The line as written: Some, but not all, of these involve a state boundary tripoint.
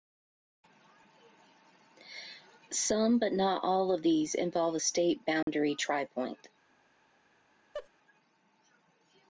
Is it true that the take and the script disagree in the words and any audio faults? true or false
true